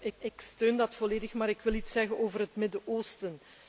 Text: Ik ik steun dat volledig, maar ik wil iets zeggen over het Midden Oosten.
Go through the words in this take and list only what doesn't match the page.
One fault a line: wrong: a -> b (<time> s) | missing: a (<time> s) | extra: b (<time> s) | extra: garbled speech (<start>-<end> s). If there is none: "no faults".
no faults